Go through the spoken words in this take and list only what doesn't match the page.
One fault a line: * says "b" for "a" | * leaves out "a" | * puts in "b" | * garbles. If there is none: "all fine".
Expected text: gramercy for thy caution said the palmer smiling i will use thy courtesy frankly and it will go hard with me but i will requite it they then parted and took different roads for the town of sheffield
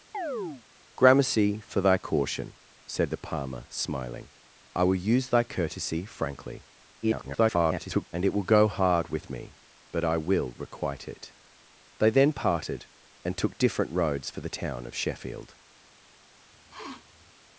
* garbles